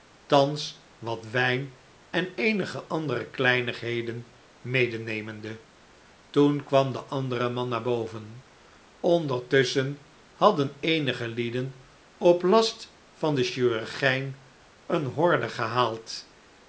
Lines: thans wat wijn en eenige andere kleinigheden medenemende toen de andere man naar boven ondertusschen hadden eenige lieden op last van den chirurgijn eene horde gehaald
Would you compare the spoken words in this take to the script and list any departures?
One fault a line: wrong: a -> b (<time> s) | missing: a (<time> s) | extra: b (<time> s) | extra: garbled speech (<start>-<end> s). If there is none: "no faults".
extra: kwam (6.6 s)